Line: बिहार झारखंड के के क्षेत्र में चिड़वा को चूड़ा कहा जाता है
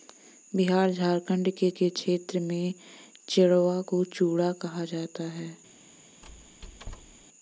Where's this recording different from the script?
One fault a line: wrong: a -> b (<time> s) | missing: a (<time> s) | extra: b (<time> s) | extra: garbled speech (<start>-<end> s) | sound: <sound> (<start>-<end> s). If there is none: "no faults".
sound: squeak (6.2-7.3 s)